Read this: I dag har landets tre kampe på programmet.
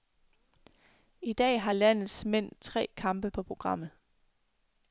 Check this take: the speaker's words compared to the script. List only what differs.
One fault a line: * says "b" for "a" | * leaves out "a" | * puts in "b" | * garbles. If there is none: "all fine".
* puts in "mænd"